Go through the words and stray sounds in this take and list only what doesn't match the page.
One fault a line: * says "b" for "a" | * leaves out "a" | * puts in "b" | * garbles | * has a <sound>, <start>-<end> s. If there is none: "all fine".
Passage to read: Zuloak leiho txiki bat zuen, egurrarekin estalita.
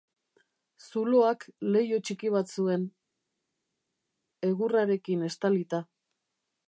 all fine